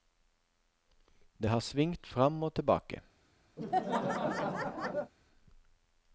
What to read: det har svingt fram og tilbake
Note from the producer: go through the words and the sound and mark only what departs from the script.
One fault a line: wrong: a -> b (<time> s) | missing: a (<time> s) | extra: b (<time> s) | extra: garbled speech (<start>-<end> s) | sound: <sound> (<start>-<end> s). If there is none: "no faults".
sound: laugh (3.6-5.1 s)